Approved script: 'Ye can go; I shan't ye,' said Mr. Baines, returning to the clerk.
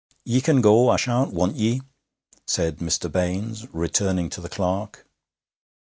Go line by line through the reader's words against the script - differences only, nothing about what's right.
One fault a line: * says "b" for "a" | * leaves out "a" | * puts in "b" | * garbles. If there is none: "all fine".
* puts in "want"